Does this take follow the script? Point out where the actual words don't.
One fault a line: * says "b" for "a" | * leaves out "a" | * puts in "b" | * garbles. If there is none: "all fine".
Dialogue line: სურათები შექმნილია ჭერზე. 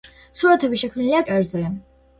all fine